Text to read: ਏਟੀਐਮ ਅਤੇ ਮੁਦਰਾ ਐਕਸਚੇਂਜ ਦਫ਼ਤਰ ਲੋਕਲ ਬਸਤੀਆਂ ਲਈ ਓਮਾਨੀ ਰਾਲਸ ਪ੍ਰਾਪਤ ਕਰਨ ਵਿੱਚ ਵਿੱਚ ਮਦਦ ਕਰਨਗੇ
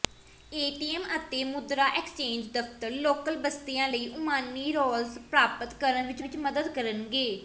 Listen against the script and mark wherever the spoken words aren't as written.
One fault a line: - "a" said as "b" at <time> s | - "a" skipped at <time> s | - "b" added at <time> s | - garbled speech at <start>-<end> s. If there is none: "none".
none